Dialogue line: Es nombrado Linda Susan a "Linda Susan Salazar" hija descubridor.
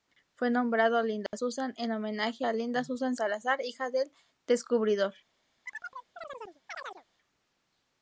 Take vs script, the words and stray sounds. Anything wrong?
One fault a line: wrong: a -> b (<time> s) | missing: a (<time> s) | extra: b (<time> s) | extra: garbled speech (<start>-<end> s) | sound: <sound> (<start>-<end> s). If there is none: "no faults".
wrong: Es -> Fue (0.3 s)
sound: dropout (1.3-1.3 s)
extra: en homenaje (1.8 s)
extra: del (3.9 s)
sound: chirp (5.7-7.0 s)